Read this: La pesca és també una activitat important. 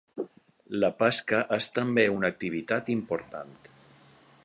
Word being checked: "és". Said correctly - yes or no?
yes